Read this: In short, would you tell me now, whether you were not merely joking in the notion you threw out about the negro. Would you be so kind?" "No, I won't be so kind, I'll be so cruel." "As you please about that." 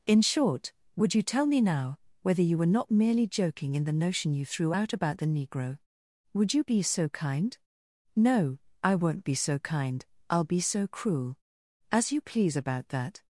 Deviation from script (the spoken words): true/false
false